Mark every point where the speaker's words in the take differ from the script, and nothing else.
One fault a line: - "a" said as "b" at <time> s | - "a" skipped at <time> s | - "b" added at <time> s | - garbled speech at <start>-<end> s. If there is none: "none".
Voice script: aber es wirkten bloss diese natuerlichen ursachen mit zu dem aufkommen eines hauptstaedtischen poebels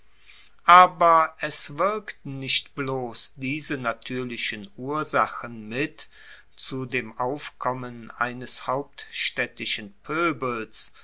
- "nicht" added at 2.4 s